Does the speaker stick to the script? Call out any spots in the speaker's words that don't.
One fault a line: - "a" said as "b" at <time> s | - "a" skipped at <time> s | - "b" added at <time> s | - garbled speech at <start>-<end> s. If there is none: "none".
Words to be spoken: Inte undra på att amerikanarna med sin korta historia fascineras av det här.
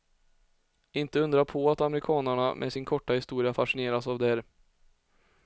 none